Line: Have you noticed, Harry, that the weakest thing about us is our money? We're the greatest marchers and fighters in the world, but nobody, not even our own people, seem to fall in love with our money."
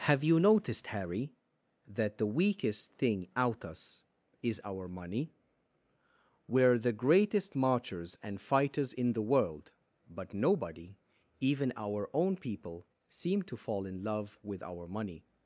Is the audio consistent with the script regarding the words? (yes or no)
no